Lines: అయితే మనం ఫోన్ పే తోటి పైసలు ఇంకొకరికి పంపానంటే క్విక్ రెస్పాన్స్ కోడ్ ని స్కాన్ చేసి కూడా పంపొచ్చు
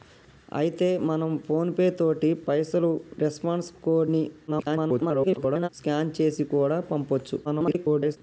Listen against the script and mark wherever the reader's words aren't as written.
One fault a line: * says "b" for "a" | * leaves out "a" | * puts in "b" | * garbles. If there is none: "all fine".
* leaves out "ఇంకొకరికి పంపానంటే క్విక్"
* garbles
* garbles